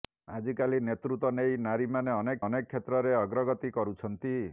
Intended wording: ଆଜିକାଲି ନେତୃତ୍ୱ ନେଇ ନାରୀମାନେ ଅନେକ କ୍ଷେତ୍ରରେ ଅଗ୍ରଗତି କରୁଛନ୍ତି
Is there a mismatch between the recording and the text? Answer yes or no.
yes